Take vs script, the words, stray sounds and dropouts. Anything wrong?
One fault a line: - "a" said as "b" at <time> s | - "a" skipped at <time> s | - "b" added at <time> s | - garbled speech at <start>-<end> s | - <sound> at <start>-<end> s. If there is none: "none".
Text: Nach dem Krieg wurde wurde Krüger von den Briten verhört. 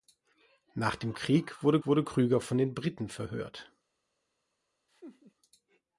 - laugh at 4.9-5.3 s